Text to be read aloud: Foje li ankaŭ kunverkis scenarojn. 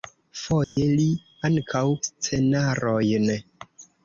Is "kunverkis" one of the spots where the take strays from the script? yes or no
yes